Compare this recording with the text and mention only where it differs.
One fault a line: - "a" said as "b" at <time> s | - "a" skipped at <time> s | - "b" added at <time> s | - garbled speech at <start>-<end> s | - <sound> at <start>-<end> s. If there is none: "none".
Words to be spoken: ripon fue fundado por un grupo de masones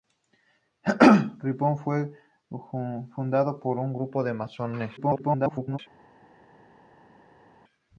- garbled speech at 5.0-5.8 s